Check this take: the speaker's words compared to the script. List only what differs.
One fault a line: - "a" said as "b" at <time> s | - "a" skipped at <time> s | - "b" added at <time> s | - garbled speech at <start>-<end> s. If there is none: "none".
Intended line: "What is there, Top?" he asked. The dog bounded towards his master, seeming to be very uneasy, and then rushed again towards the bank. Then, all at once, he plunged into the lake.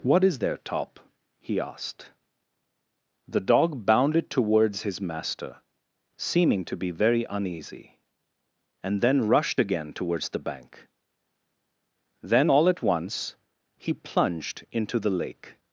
none